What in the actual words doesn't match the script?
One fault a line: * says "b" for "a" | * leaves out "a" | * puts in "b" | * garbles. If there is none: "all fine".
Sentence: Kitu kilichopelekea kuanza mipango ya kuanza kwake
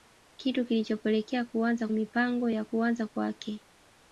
all fine